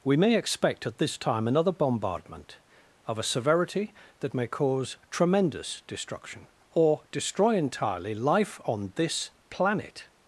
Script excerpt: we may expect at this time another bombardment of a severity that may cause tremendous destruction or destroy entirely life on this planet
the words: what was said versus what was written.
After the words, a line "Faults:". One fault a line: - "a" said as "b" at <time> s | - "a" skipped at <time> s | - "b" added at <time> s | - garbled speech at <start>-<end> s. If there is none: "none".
we may expect at this time another bombardment of a severity that may cause tremendous destruction or destroy entirely life on this planet
Faults:
none